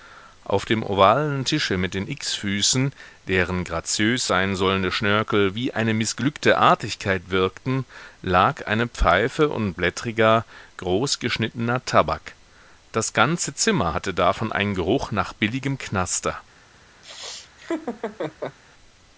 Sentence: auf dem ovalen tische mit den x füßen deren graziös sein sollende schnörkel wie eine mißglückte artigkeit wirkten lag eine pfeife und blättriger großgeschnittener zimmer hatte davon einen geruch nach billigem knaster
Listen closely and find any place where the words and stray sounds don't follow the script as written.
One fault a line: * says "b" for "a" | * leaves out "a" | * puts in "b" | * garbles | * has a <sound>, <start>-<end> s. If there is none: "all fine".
* puts in "tabak das ganze"
* has a laugh, 17.0-18.6 s